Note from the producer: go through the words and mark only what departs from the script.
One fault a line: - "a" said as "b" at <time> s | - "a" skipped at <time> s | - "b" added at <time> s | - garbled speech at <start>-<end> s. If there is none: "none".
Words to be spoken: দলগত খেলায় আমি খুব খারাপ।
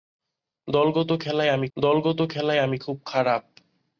- "দলগত খেলায় আমি" added at 1.8 s